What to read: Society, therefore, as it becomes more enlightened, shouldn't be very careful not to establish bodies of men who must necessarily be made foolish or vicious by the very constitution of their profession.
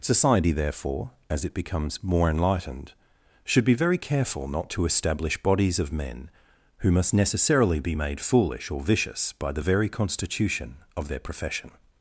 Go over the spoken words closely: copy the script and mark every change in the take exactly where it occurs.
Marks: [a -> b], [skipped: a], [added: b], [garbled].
Society, therefore, as it becomes more enlightened, [shouldn't -> should] be very careful not to establish bodies of men who must necessarily be made foolish or vicious by the very constitution of their profession.